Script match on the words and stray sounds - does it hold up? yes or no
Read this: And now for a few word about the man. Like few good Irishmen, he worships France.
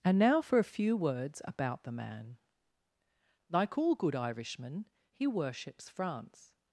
no